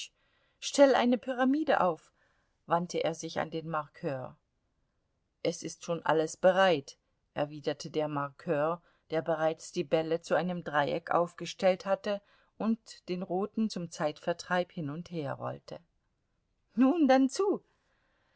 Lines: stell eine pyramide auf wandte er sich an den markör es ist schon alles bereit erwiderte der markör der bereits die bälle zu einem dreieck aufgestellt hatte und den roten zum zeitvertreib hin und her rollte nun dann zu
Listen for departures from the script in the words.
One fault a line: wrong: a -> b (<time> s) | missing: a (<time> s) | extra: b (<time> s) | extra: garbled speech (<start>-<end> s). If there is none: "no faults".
no faults